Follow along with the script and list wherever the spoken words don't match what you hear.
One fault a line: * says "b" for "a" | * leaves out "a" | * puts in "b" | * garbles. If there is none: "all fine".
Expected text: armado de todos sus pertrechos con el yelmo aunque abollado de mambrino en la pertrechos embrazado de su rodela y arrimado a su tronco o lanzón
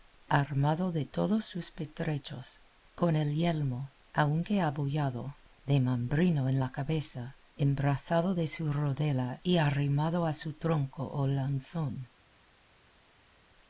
* says "cabeza" for "pertrechos"